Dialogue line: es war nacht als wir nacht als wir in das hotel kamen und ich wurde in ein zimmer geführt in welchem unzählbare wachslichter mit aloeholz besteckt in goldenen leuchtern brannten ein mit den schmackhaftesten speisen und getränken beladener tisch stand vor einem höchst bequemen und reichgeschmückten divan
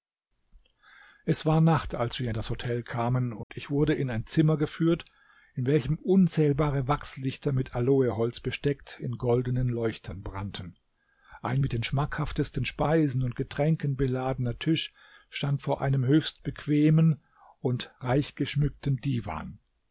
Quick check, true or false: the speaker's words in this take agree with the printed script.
false